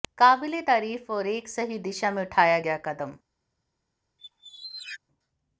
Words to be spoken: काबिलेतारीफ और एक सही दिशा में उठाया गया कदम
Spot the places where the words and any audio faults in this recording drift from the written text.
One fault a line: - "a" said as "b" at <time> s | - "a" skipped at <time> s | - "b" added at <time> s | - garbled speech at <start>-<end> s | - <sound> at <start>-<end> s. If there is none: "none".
- squeak at 4.2-5.0 s